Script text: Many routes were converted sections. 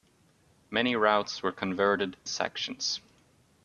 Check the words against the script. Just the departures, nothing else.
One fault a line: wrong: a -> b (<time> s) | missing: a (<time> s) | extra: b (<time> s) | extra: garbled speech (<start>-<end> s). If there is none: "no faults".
no faults